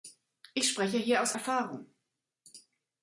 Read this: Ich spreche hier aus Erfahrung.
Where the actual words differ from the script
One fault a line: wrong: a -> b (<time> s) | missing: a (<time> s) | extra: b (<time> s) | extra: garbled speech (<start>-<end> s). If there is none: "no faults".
no faults